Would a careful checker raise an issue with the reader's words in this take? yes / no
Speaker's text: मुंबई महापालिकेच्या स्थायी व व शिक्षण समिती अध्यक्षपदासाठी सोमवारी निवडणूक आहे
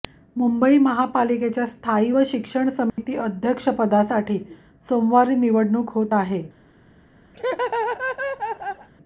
yes